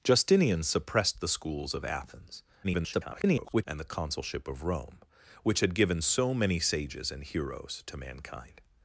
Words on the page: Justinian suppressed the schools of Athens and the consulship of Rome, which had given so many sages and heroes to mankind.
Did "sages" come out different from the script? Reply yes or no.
no